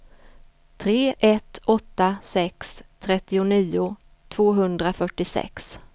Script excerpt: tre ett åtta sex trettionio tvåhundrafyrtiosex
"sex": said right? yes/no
yes